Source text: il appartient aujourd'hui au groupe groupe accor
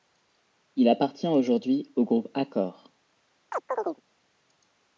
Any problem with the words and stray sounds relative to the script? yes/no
yes